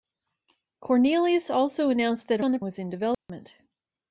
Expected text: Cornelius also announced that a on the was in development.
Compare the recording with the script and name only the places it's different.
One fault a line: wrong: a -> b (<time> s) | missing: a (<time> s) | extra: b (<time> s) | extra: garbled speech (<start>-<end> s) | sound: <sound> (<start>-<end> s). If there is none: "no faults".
sound: dropout (3.1-3.3 s)